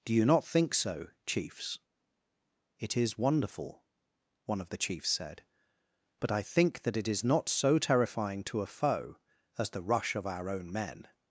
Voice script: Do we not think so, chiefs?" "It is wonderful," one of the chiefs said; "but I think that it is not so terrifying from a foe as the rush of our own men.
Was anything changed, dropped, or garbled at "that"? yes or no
no